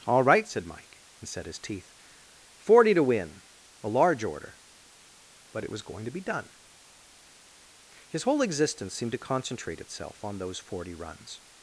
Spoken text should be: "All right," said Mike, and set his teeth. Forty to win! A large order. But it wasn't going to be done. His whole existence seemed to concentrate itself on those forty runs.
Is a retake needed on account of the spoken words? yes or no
yes